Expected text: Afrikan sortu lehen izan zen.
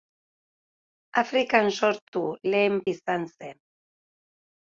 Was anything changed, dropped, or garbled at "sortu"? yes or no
no